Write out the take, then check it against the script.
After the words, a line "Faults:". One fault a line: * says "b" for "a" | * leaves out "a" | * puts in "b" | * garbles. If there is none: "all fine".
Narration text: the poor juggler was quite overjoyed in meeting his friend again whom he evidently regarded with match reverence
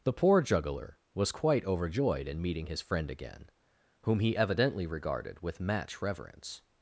the poor juggler was quite overjoyed in meeting his friend again whom he evidently regarded with match reverence
Faults:
all fine